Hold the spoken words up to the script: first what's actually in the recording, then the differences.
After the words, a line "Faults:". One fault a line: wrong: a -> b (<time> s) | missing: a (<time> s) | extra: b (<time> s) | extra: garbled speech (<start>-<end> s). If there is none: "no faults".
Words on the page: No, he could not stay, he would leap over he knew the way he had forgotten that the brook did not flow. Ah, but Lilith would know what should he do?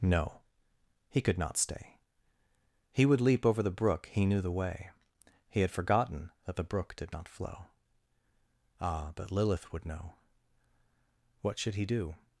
No, he could not stay, he would leap over the brook, he knew the way he had forgotten that the brook did not flow. Ah, but Lilith would know what should he do?
Faults:
extra: the brook (3.6 s)